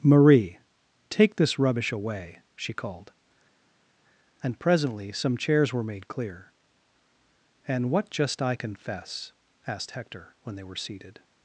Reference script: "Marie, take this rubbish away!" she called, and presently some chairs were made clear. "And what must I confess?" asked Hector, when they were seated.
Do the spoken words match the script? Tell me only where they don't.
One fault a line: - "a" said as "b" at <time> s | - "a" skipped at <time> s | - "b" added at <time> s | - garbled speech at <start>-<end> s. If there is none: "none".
- "must" said as "just" at 8.1 s